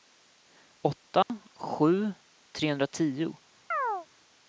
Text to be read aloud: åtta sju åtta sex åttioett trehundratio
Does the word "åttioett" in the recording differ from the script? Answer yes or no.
yes